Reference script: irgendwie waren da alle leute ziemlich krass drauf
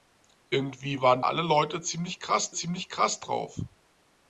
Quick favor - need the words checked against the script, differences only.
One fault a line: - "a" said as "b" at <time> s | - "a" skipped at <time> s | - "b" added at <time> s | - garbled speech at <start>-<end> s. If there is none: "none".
- "da" skipped at 1.2 s
- "ziemlich krass" added at 2.5 s